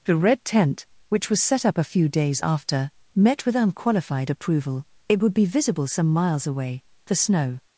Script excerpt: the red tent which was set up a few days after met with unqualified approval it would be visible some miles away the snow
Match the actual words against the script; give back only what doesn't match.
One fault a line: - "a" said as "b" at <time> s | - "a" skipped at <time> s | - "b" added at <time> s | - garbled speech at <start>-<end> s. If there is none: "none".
none